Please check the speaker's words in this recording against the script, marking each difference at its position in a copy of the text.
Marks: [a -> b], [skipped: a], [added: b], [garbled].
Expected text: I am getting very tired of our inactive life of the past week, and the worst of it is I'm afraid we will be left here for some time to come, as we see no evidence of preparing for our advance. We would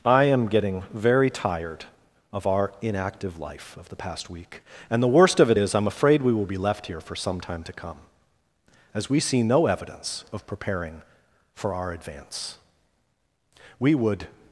I am getting very tired of our inactive life of the past week, and the worst of it is I'm afraid we will be left here for some time to come, as we see no evidence of preparing for our advance. We would